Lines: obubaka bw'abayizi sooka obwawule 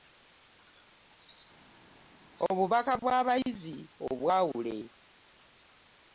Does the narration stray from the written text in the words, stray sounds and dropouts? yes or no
yes